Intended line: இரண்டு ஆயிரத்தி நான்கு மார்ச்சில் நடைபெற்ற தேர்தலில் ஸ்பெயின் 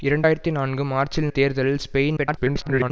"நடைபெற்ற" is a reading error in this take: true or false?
true